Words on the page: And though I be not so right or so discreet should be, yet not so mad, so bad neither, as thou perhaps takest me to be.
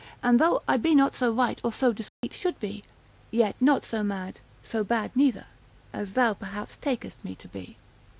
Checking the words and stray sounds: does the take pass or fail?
fail